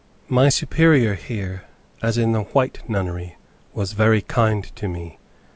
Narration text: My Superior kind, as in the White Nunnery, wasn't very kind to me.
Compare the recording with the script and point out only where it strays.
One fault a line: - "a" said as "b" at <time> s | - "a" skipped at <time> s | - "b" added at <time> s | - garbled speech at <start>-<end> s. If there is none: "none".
- "kind" said as "here" at 1.1 s
- "wasn't" said as "was" at 3.7 s